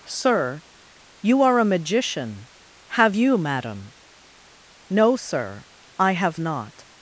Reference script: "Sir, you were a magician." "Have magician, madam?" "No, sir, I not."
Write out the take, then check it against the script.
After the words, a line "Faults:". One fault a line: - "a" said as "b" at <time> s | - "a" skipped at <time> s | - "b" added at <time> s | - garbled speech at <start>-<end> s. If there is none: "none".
"Sir, you are a magician." "Have you, madam?" "No, sir, I have not."
Faults:
- "were" said as "are" at 1.4 s
- "magician" said as "you" at 3.1 s
- "have" added at 6.1 s